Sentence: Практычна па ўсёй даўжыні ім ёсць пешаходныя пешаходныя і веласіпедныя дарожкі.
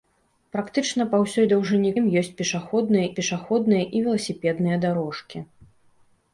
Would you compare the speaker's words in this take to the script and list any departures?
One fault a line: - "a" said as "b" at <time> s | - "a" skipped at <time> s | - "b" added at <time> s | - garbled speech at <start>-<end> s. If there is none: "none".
none